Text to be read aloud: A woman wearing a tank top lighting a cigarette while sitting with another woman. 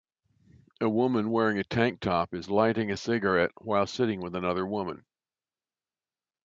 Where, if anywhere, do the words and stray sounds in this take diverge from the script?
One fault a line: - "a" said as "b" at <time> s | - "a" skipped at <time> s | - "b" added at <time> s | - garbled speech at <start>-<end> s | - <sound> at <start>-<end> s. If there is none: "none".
- "is" added at 2.3 s